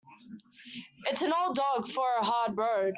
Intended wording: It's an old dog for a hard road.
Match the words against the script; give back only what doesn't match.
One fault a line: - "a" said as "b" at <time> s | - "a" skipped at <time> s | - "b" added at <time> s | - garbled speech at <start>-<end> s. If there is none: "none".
none